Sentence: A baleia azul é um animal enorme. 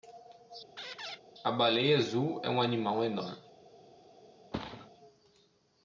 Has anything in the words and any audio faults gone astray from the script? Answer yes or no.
yes